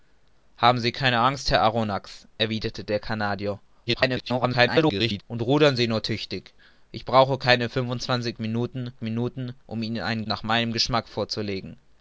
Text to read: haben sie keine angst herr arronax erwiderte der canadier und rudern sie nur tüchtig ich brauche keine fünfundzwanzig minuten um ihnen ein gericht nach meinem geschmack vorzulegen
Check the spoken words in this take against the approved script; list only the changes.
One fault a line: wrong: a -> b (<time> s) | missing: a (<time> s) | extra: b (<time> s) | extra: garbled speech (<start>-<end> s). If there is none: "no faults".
extra: garbled speech (3.9-5.2 s)
extra: minuten (9.0 s)
missing: gericht (10.2 s)